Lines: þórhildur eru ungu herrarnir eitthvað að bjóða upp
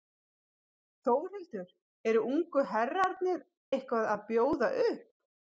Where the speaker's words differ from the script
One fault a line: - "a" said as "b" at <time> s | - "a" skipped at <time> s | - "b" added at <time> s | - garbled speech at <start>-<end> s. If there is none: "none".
none